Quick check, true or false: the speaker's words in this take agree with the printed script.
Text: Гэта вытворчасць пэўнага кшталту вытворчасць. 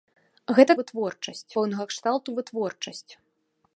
true